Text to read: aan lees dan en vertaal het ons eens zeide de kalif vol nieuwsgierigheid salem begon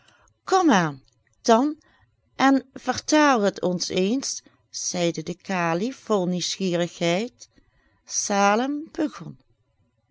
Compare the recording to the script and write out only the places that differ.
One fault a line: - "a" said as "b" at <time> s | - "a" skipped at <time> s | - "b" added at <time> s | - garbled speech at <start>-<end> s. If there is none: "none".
- "lees" skipped at 1.0 s